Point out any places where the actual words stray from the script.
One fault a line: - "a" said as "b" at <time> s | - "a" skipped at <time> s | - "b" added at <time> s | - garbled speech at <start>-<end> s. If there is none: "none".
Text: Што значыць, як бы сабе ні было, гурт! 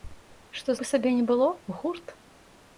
- "значыць як" skipped at 0.7 s